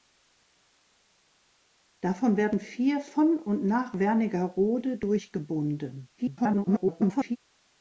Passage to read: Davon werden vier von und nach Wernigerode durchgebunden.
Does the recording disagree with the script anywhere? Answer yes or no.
yes